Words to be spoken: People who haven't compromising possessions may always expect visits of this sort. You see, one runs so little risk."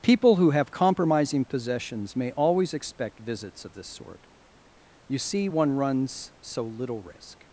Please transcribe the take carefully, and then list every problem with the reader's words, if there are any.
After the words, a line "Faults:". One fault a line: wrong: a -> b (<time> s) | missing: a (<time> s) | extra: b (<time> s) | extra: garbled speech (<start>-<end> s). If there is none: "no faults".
People who have compromising possessions may always expect visits of this sort. You see, one runs so little risk."
Faults:
wrong: haven't -> have (0.5 s)